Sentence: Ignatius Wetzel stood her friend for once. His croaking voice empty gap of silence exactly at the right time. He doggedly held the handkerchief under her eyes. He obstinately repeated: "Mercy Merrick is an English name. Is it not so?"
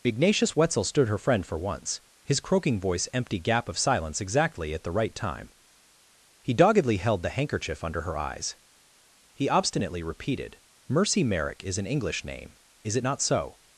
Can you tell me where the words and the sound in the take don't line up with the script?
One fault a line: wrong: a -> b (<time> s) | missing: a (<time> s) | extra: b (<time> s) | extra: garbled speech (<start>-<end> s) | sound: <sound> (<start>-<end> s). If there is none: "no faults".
no faults